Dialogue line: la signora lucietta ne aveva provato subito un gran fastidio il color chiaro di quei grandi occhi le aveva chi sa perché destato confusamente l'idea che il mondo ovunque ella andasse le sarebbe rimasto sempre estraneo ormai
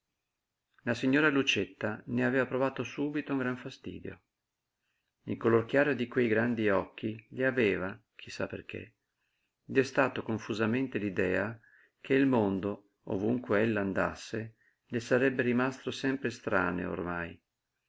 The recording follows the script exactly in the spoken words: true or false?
true